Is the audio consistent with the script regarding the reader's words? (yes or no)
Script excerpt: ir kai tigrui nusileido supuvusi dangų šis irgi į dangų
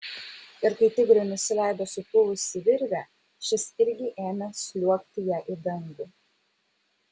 no